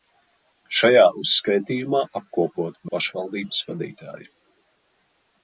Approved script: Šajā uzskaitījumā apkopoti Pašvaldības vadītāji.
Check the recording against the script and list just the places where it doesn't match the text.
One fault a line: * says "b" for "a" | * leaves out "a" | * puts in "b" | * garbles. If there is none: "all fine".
all fine